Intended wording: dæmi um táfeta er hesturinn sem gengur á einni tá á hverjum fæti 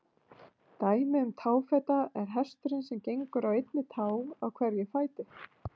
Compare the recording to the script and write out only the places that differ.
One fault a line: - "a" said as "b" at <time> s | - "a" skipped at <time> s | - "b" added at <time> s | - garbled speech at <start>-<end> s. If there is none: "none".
none